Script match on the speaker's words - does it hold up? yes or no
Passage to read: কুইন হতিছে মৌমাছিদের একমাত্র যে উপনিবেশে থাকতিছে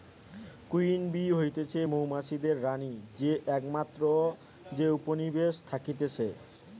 no